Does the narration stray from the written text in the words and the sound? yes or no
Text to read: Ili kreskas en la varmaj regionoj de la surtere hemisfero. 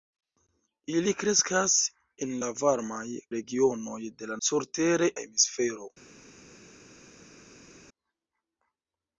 no